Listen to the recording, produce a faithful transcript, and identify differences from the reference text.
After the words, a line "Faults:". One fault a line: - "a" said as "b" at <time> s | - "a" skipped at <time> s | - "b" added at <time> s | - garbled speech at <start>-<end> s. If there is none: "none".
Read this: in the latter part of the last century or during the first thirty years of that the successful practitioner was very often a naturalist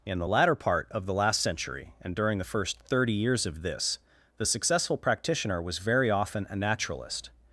in the latter part of the last century and during the first thirty years of this the successful practitioner was very often a naturalist
Faults:
- "or" said as "and" at 2.0 s
- "that" said as "this" at 3.6 s